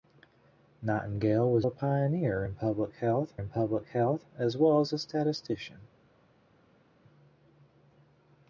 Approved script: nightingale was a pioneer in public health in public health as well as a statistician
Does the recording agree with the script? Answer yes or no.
yes